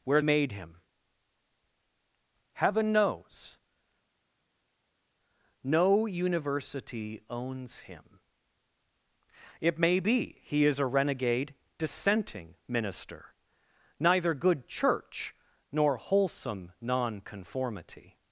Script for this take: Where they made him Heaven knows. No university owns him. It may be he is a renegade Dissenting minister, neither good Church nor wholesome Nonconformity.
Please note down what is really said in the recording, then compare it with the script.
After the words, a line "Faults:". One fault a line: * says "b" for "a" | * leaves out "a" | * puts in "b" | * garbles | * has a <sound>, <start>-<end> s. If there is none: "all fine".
Where made him Heaven knows. No university owns him. It may be he is a renegade Dissenting minister, neither good Church nor wholesome Nonconformity.
Faults:
* leaves out "they"